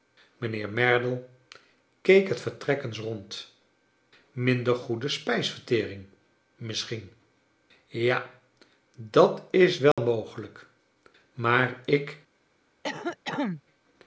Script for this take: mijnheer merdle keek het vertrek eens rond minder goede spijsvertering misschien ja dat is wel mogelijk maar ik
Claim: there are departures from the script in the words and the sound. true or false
true